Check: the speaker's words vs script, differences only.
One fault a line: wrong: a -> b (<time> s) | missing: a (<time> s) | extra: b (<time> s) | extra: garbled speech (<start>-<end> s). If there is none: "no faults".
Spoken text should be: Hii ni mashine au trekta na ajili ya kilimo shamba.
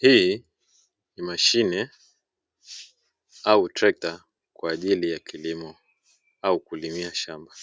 wrong: na -> kwa (4.5 s)
extra: au kulimia (6.4 s)